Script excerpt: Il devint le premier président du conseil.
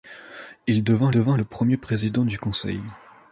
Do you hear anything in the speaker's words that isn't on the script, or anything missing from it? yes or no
yes